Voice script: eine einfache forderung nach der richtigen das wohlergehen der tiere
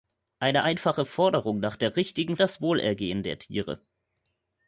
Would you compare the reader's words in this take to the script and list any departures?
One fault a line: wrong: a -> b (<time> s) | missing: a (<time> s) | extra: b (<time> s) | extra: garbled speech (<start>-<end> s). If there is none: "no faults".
no faults